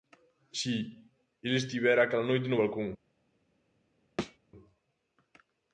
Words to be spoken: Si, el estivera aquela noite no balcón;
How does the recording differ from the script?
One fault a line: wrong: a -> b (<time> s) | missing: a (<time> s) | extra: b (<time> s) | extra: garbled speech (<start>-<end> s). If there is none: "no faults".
no faults